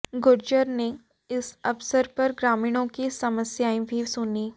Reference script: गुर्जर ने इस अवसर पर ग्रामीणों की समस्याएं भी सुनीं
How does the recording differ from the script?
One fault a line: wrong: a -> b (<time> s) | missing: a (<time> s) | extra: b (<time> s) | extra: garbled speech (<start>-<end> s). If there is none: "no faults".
no faults